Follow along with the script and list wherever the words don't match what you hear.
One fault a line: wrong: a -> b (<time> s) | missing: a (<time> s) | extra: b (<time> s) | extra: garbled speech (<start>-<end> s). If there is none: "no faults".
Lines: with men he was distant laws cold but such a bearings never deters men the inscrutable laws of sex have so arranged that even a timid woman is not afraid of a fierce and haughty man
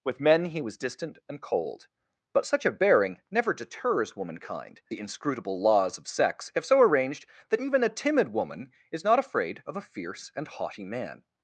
wrong: laws -> and (1.3 s)
wrong: bearings -> bearing (2.7 s)
wrong: men -> womankind (4.2 s)